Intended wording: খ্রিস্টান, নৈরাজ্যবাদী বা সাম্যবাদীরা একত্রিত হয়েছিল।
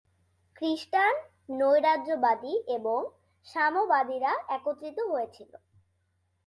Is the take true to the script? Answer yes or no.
no